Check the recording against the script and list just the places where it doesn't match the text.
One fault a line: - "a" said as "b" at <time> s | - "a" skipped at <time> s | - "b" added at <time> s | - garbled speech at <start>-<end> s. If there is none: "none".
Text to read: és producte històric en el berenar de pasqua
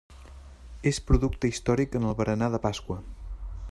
none